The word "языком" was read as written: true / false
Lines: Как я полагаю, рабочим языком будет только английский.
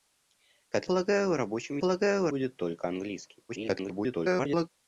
false